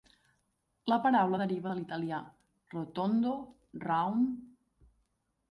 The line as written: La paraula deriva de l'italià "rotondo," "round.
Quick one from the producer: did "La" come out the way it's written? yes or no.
yes